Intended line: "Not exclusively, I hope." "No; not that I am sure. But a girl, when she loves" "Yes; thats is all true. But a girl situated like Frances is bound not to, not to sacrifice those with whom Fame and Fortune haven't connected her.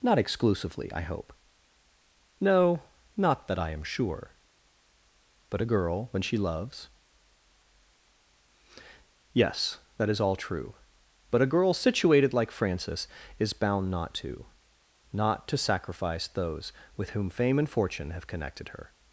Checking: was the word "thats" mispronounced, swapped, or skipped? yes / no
yes